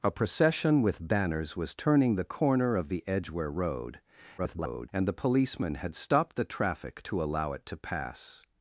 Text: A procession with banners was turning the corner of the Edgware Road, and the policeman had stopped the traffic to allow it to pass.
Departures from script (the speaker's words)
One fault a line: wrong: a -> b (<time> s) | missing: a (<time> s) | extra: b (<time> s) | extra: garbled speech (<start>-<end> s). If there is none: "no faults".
extra: garbled speech (4.4-4.9 s)